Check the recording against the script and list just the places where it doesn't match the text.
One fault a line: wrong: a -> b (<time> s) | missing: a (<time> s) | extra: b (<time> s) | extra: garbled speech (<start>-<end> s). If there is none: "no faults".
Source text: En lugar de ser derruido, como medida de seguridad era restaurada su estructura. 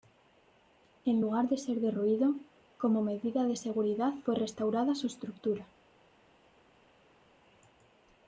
wrong: era -> fue (4.2 s)